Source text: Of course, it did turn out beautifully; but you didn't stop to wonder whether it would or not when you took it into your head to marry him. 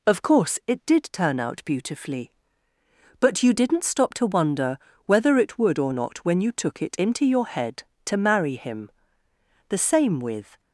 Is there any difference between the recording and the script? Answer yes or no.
yes